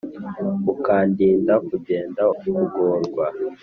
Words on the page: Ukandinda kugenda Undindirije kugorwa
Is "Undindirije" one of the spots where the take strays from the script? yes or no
yes